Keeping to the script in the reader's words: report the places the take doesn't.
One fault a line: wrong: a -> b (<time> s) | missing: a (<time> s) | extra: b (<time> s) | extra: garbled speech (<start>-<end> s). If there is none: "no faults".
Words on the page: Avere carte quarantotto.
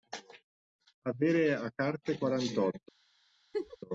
extra: a (1.5 s)